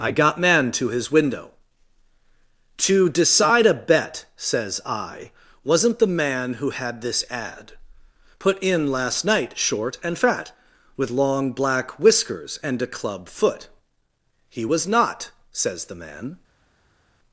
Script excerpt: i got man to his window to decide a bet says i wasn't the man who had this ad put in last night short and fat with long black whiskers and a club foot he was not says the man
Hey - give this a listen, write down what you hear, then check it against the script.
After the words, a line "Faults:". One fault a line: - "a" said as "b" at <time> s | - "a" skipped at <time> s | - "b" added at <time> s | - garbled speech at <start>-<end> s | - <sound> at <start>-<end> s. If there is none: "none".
i got man to his window to decide a bet says i wasn't the man who had this ad put in last night short and fat with long black whiskers and a club foot he was not says the man
Faults:
none